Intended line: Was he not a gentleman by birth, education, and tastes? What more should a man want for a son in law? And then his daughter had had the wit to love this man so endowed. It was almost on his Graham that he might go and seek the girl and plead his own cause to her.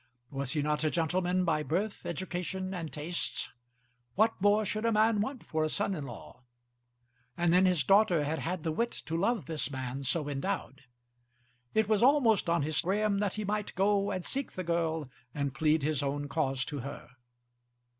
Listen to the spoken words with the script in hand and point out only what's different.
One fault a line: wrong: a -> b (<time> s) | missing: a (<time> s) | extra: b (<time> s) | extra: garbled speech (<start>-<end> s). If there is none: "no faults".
no faults